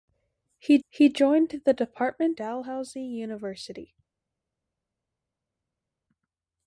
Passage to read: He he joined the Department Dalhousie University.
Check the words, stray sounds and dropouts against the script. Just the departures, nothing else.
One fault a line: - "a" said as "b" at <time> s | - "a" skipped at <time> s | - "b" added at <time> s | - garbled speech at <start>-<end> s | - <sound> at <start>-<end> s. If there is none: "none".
none